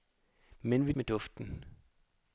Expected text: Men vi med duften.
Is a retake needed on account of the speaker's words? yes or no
no